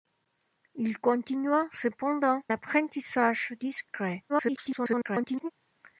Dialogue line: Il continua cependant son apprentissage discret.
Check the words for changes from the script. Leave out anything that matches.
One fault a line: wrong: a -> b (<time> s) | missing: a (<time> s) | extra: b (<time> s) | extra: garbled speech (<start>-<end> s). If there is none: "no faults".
missing: son (2.4 s)
extra: garbled speech (4.3-5.5 s)